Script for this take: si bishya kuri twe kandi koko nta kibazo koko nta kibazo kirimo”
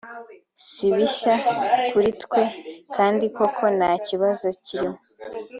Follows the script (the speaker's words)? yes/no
no